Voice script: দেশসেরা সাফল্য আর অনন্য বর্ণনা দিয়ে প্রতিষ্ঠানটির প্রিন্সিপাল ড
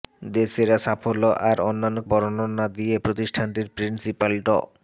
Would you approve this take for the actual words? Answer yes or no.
yes